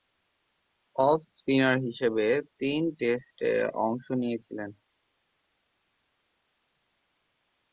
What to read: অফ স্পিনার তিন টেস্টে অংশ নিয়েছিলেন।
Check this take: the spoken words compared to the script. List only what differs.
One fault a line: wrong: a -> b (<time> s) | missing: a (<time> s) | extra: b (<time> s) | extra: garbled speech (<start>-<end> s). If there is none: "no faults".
extra: হিসেবে (1.8 s)